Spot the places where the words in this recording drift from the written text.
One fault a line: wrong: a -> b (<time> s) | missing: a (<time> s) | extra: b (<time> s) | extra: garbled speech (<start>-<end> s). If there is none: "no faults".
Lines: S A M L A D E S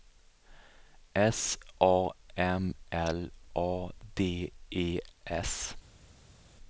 no faults